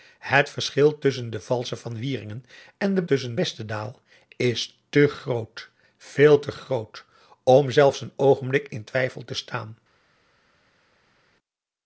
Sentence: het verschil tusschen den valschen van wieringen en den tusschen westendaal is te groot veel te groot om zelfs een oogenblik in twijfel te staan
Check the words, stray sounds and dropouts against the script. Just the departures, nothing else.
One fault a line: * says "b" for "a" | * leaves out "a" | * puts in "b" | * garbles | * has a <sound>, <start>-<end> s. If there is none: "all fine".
all fine